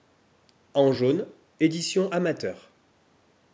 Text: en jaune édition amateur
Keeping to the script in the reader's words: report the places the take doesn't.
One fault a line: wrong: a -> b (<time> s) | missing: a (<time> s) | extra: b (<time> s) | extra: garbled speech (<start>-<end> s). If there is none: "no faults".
no faults